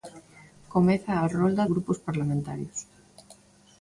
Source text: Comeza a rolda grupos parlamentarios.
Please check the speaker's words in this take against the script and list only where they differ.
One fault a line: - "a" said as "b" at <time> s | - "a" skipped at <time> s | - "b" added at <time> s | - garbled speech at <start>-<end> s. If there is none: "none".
none